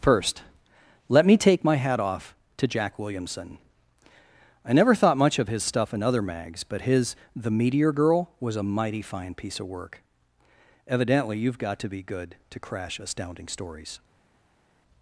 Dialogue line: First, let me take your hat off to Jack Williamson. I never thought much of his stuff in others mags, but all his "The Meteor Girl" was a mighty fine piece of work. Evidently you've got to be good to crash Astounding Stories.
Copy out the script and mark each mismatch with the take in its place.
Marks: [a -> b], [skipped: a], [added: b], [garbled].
First, let me take [your -> my] hat off to Jack Williamson. I never thought much of his stuff in [others -> other] mags, but [skipped: all] his "The Meteor Girl" was a mighty fine piece of work. Evidently you've got to be good to crash Astounding Stories.